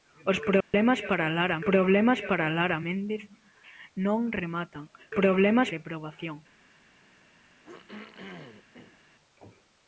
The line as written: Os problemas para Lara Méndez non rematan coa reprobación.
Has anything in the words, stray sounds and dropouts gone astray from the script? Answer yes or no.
yes